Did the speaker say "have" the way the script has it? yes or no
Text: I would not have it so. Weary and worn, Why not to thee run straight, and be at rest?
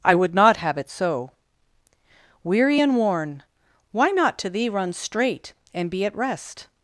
yes